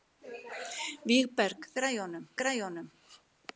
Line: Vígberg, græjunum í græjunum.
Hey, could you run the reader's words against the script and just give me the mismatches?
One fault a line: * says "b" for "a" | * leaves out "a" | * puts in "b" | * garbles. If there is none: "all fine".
all fine